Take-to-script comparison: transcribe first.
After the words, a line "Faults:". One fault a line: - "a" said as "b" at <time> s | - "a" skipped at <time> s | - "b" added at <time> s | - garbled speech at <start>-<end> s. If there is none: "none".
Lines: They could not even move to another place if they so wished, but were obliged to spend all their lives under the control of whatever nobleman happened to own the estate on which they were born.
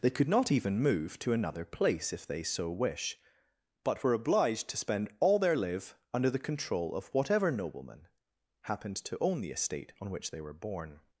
They could not even move to another place if they so wish, but were obliged to spend all their live under the control of whatever nobleman happened to own the estate on which they were born.
Faults:
- "wished" said as "wish" at 2.7 s
- "lives" said as "live" at 5.5 s